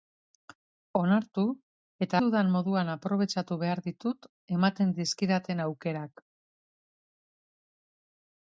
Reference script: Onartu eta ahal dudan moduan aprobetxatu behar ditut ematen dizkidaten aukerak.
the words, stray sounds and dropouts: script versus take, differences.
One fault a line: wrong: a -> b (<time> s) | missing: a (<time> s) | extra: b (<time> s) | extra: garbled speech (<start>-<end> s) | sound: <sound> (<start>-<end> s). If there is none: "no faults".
missing: ahal (2.2 s)